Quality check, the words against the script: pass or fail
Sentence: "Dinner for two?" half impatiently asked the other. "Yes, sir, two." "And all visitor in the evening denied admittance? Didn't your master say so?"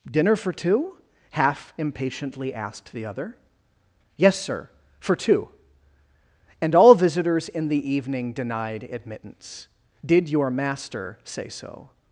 fail